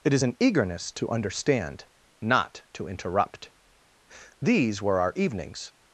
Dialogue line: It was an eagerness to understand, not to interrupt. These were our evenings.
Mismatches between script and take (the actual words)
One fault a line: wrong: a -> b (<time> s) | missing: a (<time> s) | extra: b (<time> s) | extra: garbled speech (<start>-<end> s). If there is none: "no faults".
wrong: was -> is (0.1 s)